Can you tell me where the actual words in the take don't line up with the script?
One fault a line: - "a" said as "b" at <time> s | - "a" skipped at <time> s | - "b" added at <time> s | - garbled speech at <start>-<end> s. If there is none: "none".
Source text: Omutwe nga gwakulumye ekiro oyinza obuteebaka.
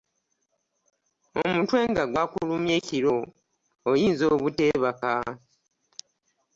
none